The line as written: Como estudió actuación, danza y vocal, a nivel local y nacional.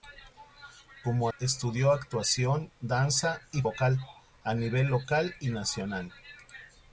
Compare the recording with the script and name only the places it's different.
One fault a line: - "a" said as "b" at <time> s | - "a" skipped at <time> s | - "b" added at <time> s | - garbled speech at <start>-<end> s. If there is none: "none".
none